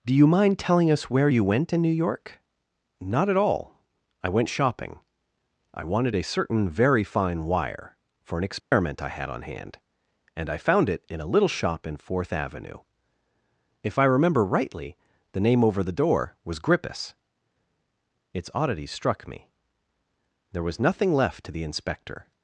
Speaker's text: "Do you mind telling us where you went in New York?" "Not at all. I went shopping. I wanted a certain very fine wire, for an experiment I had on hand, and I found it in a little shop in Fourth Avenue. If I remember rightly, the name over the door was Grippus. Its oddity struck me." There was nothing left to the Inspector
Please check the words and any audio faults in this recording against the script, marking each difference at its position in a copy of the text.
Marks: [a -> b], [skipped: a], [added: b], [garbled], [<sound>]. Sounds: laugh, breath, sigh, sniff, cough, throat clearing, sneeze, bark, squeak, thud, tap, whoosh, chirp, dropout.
"Do you mind telling us where you went in New York?" "Not at all. I went shopping. I wanted a certain very fine wire, for an experiment [dropout] I had on hand, and I found it in a little shop in Fourth Avenue. If I remember rightly, the name over the door was Grippus. Its oddity struck me." There was nothing left to the Inspector